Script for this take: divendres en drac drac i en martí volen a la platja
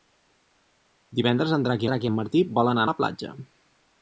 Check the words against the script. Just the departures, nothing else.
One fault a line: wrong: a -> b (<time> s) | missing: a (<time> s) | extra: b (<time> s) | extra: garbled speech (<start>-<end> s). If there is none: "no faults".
no faults